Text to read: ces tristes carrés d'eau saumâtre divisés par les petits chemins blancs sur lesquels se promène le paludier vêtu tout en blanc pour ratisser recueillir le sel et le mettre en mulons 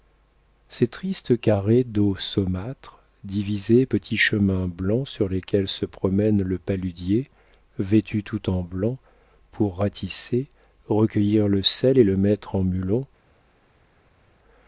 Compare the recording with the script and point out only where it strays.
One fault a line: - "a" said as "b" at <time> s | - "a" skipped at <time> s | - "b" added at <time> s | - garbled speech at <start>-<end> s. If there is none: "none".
- "par les" skipped at 3.9 s